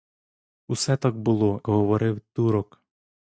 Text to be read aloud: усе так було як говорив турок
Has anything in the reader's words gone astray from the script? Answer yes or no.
yes